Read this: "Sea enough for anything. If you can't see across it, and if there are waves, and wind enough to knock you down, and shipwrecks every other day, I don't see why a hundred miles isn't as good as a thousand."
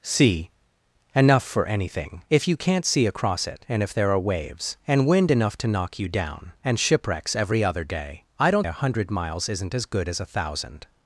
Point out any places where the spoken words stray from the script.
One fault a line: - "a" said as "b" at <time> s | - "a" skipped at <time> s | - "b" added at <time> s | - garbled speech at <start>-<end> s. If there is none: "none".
- "see why" skipped at 8.7 s